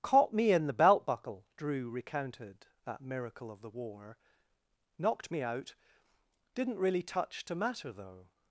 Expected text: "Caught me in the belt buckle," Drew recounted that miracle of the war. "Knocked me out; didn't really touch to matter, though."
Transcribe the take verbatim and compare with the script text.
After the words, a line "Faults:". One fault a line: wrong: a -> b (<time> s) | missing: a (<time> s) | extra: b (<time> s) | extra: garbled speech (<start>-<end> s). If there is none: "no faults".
"Caught me in the belt buckle," Drew recounted that miracle of the war. "Knocked me out; didn't really touch to matter, though."
Faults:
no faults